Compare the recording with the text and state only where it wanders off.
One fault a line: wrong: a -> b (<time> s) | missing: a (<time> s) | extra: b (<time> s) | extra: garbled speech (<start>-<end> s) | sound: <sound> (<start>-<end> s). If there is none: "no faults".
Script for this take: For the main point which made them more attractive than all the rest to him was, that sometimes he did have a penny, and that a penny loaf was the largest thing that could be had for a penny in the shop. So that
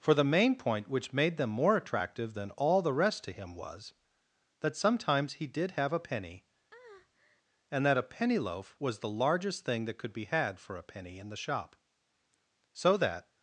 sound: breath (6.7-7.4 s)